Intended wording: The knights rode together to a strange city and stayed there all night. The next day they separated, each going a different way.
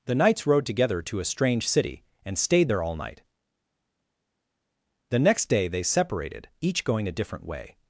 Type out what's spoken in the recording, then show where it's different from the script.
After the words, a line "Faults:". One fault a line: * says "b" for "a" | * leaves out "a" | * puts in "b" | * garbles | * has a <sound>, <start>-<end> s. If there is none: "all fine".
The knights rode together to a strange city and stayed there all night. The next day they separated, each going a different way.
Faults:
all fine